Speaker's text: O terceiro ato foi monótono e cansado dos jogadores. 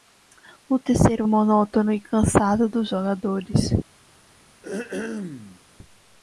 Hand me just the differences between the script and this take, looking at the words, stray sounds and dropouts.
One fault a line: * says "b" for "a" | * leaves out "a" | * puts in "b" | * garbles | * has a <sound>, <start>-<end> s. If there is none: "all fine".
* leaves out "ato foi"
* has a throat clearing, 4.6-5.6 s